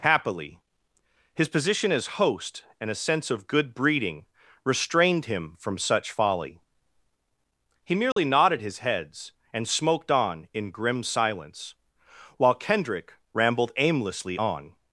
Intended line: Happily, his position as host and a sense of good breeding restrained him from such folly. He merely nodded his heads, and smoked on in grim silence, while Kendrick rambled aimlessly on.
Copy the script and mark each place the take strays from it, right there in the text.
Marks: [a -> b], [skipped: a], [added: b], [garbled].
Happily, his position as host and a sense of good breeding restrained him from such folly. He merely nodded his heads, and smoked on in grim silence, while Kendrick rambled aimlessly on.